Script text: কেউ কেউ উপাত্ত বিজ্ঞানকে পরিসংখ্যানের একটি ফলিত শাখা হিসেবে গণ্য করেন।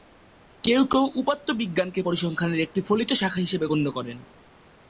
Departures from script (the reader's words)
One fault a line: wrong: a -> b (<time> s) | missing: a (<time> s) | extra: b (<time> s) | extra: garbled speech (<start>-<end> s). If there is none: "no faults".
no faults